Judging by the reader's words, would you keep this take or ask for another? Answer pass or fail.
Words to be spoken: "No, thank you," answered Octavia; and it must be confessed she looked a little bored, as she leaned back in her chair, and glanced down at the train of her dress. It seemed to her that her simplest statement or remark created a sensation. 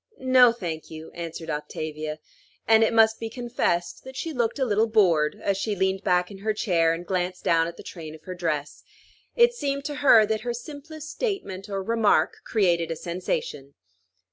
fail